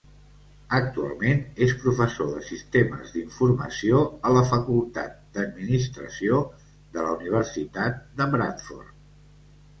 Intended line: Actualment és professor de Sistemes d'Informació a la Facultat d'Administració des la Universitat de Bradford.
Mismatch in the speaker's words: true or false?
true